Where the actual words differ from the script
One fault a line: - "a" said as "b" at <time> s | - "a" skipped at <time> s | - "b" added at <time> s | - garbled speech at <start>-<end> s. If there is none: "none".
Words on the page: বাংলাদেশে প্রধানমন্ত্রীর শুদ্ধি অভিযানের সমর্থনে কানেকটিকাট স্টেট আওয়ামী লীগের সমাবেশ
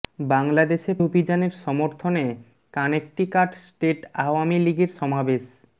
- "প্রধানমন্ত্রীর শুদ্ধি" skipped at 0.9 s